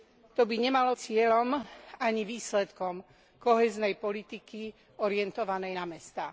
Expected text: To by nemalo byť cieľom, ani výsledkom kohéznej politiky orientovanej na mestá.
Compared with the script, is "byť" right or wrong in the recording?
wrong